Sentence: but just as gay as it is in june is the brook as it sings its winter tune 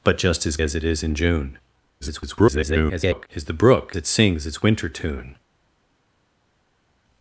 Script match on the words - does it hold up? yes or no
no